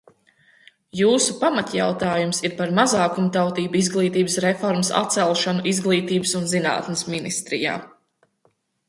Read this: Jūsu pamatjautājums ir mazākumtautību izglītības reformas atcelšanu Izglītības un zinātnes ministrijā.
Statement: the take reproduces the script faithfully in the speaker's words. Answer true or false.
false